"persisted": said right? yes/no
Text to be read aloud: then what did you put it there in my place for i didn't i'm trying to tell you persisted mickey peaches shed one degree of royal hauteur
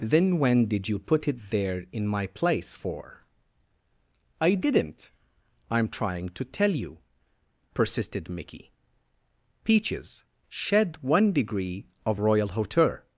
yes